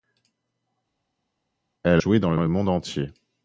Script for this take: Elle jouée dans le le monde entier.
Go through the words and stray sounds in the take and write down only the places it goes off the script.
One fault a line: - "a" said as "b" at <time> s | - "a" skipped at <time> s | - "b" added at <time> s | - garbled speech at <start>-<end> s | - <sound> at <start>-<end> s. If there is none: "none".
none